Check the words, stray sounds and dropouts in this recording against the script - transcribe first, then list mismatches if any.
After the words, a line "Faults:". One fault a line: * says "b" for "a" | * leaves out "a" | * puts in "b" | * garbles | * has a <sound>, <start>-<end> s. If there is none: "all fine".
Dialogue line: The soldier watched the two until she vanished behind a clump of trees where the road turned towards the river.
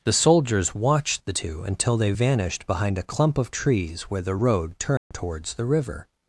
The soldiers watched the two until they vanished behind a clump of trees where the road turned towards the river.
Faults:
* says "soldiers" for "soldier"
* says "they" for "she"
* has a dropout, 5.0-5.1 s